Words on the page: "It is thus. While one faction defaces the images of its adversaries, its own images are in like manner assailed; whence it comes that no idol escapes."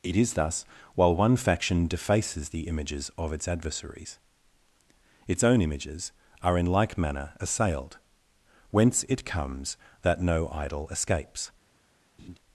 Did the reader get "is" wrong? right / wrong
right